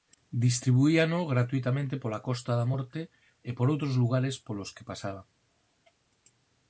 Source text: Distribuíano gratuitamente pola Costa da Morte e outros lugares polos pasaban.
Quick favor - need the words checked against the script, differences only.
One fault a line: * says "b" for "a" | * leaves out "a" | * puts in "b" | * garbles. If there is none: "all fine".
* puts in "por"
* puts in "que"